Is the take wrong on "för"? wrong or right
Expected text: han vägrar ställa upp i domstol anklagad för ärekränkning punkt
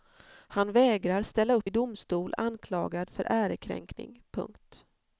right